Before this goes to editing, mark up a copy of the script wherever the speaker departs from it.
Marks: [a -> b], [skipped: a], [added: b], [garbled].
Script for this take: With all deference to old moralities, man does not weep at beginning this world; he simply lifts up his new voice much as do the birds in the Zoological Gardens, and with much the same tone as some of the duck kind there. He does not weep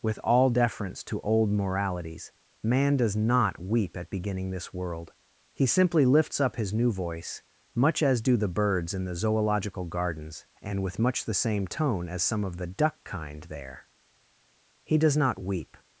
With all deference to old moralities, man does not weep at beginning this world; he simply lifts up his new voice much as do the birds in the Zoological Gardens, and with much the same tone as some of the duck kind there. He does not weep